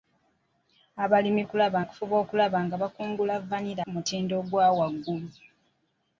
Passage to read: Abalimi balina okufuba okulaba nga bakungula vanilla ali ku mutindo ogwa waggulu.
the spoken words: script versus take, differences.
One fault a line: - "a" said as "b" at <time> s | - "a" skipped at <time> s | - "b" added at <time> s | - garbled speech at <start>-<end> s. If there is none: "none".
- "balina" said as "okulaba" at 1.4 s
- "ali" skipped at 3.8 s